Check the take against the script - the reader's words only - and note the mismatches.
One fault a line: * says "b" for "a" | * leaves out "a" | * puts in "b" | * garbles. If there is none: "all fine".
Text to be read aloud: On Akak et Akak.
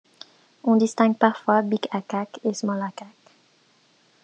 * puts in "distingue parfois Big"
* puts in "Small"